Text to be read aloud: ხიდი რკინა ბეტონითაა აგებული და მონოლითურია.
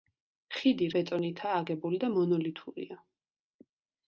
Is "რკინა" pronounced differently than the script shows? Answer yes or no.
yes